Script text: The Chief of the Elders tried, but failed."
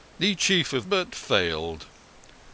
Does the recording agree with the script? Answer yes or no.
no